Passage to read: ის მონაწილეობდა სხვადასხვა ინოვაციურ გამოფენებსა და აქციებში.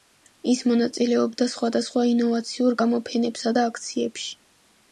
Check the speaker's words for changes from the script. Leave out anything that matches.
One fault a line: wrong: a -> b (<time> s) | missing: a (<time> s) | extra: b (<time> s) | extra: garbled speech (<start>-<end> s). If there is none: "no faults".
no faults